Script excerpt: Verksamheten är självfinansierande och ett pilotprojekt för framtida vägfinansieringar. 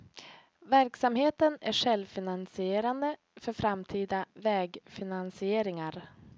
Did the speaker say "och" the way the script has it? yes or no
no